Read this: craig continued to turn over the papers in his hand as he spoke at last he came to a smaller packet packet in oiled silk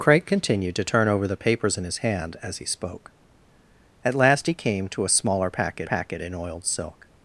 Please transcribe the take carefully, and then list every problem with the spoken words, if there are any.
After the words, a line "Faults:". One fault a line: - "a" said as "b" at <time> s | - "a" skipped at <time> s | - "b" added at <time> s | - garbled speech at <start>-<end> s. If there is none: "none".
craig continued to turn over the papers in his hand as he spoke at last he came to a smaller packet packet in oiled silk
Faults:
none